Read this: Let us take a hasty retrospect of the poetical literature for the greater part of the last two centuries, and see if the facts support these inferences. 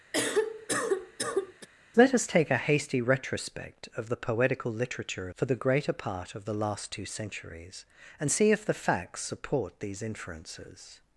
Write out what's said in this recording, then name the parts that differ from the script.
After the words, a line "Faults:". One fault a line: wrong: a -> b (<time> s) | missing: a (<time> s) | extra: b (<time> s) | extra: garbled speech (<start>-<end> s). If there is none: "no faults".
Let us take a hasty retrospect of the poetical literature for the greater part of the last two centuries, and see if the facts support these inferences.
Faults:
no faults